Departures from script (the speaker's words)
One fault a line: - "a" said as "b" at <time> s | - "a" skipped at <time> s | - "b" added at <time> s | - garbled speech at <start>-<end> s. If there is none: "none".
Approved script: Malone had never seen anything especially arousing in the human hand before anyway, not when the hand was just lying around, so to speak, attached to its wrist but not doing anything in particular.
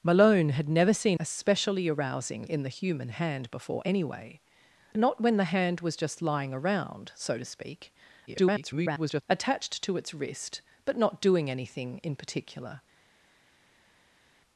- "anything" skipped at 1.2 s
- garbled speech at 8.3-9.2 s